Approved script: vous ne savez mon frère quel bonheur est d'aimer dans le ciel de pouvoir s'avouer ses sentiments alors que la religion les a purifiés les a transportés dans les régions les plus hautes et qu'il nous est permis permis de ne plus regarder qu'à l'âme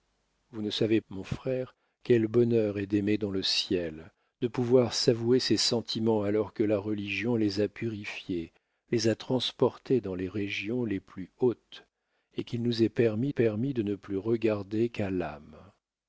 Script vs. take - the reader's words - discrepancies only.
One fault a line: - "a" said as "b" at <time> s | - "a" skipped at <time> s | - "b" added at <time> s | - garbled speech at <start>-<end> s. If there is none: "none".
none